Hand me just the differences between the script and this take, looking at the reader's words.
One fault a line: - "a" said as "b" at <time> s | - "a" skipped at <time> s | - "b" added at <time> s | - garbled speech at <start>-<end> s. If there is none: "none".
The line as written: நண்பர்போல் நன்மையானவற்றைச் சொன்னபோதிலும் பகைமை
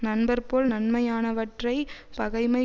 - "சொன்னபோதிலும்" skipped at 1.9 s